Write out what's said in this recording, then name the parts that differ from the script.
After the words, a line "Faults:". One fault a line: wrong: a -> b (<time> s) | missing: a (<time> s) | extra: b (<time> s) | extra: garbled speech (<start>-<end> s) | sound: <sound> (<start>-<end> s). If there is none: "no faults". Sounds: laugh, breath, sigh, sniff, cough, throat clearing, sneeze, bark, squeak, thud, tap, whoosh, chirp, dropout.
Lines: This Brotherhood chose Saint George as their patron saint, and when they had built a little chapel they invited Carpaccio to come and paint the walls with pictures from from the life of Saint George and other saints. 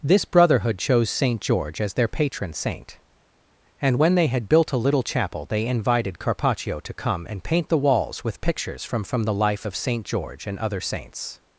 This Brotherhood chose Saint George as their patron saint, and when they had built a little chapel they invited Carpaccio to come and paint the walls with pictures from from the life of Saint George and other saints.
Faults:
no faults